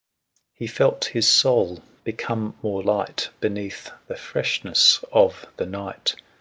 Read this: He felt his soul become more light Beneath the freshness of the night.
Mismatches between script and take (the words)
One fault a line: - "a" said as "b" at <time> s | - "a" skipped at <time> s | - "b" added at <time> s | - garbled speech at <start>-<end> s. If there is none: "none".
none